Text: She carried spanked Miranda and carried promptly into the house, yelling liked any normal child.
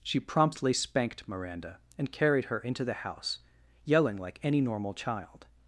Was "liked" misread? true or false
true